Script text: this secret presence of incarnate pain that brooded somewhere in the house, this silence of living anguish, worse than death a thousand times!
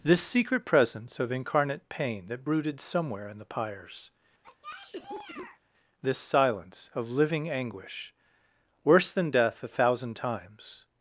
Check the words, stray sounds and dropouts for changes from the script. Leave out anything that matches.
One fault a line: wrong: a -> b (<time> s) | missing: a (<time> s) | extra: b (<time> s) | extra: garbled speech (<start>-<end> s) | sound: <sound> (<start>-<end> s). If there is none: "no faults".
wrong: house -> pyres (3.4 s)
sound: cough (4.4-5.6 s)